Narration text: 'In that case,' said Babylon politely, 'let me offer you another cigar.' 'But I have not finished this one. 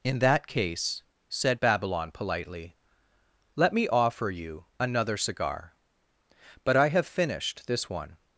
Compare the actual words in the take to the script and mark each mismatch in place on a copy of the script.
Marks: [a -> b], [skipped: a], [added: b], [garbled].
'In that case,' said Babylon politely, 'let me offer you another cigar.' 'But I have [skipped: not] finished this one.